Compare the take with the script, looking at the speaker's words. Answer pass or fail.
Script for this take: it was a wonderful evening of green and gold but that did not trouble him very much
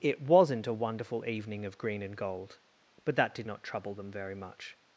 fail